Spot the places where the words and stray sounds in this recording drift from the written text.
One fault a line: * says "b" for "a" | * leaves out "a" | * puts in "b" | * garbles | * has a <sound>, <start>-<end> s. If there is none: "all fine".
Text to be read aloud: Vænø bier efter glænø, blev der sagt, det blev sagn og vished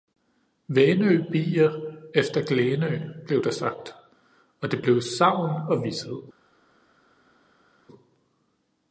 * puts in "og"